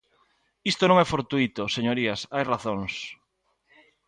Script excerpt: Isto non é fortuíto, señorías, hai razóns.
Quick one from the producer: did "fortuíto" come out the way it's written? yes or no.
yes